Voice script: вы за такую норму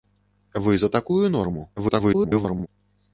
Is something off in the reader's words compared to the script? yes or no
yes